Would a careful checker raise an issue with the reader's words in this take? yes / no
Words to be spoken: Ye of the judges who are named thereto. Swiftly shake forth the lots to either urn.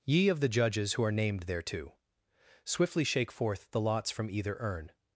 yes